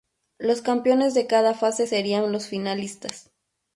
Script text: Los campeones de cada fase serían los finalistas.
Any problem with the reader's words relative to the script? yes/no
no